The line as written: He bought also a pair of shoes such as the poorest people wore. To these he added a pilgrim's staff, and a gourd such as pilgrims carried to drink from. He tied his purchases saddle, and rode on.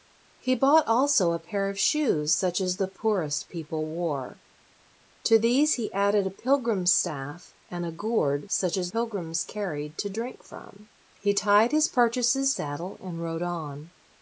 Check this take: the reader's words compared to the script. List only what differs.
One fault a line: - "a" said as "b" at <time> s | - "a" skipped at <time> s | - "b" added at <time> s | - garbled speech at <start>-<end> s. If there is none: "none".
none